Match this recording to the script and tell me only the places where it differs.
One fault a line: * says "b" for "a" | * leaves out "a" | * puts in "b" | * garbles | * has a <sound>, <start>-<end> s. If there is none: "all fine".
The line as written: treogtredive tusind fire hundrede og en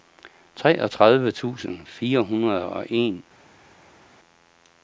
all fine